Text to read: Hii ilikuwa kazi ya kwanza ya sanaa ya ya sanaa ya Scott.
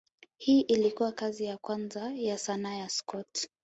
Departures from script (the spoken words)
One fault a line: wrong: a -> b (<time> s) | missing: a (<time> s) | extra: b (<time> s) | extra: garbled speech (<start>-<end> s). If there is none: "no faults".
missing: ya sanaa ya (2.9 s)